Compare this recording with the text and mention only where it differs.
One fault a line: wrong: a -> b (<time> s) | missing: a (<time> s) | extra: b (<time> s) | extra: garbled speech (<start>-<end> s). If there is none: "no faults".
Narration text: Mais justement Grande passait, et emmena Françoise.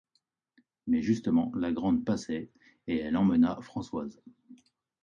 extra: la (1.6 s)
extra: elle (3.0 s)